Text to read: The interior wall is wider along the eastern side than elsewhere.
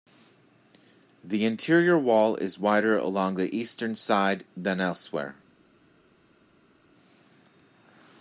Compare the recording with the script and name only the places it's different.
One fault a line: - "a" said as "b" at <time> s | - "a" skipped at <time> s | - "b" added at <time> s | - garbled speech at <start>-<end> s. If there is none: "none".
none